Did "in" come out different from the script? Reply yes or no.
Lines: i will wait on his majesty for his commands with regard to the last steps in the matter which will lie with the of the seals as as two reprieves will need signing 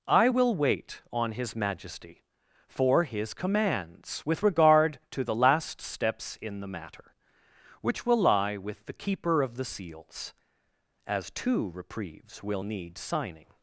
no